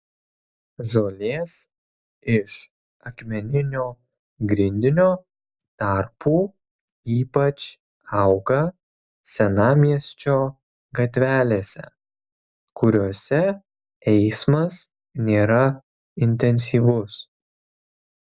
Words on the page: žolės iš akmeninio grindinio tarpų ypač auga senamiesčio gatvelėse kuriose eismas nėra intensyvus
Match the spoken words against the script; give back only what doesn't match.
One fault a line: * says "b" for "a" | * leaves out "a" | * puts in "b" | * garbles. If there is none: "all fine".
all fine